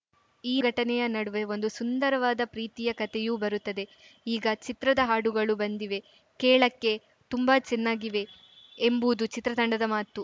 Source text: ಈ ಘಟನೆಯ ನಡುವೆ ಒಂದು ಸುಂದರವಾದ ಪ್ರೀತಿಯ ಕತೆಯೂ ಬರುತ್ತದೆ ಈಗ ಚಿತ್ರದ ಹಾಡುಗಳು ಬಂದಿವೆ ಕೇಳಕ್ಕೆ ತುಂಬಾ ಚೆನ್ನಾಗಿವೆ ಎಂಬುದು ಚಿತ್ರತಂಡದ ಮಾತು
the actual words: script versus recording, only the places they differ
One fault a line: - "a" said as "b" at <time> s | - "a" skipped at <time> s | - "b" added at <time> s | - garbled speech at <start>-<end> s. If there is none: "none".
none